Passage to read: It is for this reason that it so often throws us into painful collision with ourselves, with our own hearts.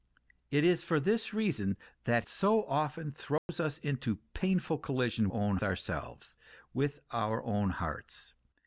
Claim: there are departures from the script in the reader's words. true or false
true